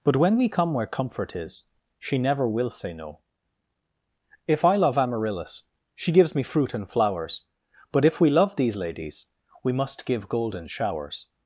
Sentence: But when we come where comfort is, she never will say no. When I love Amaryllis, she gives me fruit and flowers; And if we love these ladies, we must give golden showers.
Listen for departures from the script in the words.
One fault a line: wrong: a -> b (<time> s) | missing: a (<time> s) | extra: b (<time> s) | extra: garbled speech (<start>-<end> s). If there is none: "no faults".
wrong: When -> If (4.5 s)
wrong: And -> But (7.9 s)